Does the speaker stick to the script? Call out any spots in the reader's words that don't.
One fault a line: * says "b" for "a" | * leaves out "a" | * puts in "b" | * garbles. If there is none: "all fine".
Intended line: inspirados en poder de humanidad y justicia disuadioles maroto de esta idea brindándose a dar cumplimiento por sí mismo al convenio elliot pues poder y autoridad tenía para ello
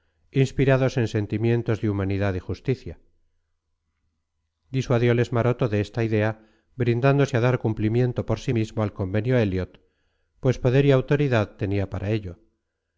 * says "sentimientos" for "poder"